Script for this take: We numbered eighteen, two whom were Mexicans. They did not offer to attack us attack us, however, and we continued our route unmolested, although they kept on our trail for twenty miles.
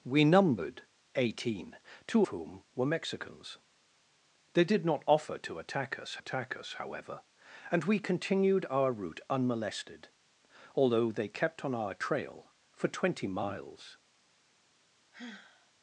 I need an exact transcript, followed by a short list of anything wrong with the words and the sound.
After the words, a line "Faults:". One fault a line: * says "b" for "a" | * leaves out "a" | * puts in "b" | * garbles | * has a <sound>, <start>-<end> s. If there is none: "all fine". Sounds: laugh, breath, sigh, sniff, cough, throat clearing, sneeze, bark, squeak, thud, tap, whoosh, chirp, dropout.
We numbered eighteen, two whom were Mexicans. They did not offer to attack us attack us, however, and we continued our route unmolested, although they kept on our trail for twenty miles.
Faults:
* has a sigh, 15.1-15.7 s